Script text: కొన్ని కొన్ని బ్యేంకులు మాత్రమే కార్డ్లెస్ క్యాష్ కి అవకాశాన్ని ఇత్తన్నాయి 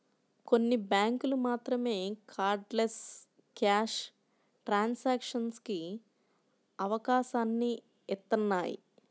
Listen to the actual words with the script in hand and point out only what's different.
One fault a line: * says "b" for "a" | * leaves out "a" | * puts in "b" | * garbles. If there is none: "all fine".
* leaves out "కొన్ని"
* puts in "ట్రాన్సాక్షన్స్"